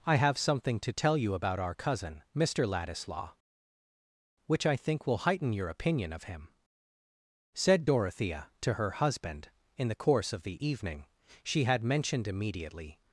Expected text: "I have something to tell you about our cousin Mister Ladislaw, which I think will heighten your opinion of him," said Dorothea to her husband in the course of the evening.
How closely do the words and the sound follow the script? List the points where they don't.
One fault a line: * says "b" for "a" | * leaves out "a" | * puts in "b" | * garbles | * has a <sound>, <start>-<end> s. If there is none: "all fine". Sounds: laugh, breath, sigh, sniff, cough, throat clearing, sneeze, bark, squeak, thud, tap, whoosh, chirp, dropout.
* puts in "She had mentioned immediately"